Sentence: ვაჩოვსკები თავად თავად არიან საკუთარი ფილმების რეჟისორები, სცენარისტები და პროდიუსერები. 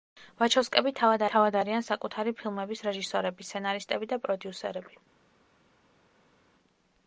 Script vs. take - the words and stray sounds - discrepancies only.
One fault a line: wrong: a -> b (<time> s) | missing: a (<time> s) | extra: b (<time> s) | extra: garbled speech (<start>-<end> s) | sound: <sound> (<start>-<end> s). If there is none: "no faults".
no faults